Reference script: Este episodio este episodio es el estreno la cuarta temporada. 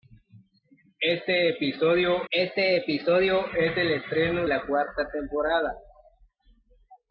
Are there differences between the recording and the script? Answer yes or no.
no